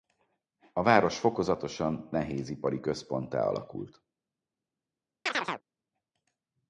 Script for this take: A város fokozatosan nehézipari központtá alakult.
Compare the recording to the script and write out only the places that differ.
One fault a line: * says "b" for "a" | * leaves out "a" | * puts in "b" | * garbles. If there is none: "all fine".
all fine